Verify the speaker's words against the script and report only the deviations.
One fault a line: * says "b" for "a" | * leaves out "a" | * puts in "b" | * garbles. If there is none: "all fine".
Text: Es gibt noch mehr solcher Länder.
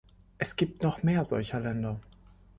all fine